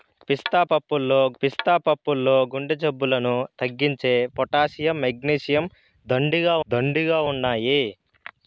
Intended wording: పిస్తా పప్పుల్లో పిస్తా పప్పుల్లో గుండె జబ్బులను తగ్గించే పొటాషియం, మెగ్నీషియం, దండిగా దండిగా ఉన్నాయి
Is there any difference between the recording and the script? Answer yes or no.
no